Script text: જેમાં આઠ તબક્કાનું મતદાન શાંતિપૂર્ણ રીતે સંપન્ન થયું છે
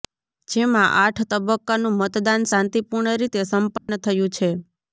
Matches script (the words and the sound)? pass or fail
fail